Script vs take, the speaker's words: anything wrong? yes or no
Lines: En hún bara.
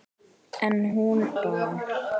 no